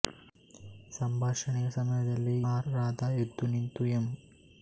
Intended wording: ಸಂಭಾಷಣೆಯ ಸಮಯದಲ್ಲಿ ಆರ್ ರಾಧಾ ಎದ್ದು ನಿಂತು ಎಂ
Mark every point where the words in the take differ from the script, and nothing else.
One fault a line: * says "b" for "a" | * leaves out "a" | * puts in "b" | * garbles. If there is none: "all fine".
all fine